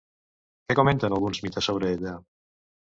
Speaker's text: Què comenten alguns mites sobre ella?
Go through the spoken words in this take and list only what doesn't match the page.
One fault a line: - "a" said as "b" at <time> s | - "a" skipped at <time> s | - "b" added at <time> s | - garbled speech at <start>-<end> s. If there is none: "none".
none